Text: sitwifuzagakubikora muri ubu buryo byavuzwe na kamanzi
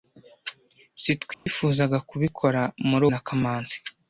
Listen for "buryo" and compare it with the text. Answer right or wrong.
wrong